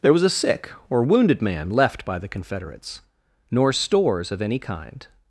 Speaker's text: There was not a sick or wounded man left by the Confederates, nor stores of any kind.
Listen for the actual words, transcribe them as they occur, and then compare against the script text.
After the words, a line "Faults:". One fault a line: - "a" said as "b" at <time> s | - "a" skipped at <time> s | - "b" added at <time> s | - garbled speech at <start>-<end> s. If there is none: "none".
There was a sick or wounded man left by the Confederates, nor stores of any kind.
Faults:
- "not" skipped at 0.2 s